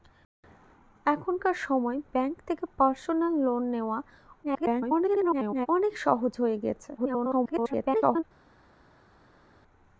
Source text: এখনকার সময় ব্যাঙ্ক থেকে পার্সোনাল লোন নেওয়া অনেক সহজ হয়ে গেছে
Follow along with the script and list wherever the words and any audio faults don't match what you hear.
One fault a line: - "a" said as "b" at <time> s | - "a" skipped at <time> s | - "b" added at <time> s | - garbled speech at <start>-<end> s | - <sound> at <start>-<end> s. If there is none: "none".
- garbled speech at 4.4-5.7 s
- garbled speech at 7.0-8.2 s